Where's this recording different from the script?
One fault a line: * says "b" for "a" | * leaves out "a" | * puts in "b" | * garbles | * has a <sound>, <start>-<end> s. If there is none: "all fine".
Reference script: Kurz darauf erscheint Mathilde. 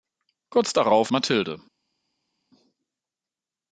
* leaves out "erscheint"